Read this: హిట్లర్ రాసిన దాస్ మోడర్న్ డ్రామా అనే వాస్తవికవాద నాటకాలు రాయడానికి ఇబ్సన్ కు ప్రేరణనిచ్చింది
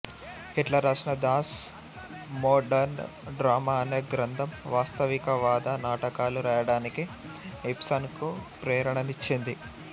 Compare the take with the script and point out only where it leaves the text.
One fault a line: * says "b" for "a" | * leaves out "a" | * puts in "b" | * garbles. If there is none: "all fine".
* puts in "గ్రంథం"